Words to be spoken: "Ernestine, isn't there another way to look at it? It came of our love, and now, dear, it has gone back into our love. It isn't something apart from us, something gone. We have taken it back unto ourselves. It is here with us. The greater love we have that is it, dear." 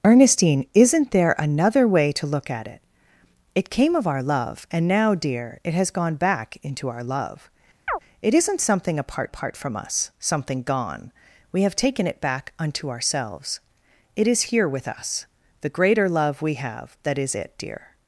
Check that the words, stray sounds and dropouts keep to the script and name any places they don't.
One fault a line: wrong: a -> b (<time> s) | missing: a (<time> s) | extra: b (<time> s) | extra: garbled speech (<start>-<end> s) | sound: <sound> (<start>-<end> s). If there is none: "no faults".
sound: chirp (7.9-8.0 s)
extra: apart (9.3 s)